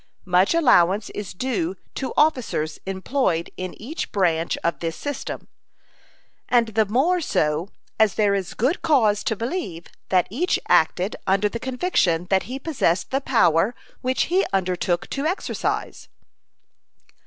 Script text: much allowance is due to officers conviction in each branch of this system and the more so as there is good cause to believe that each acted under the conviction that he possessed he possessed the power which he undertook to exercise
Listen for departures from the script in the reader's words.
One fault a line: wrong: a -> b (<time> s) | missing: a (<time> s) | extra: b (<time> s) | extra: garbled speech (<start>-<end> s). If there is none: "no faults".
wrong: conviction -> employed (2.9 s)
missing: he possessed (13.1 s)